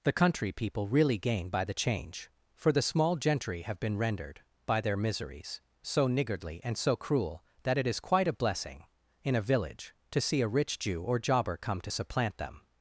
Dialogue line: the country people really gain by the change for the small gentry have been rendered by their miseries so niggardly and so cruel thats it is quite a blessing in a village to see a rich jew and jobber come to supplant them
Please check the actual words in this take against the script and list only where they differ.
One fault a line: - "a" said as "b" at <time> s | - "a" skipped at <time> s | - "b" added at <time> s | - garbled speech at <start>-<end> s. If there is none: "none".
- "thats" said as "that" at 7.6 s
- "and" said as "or" at 11.0 s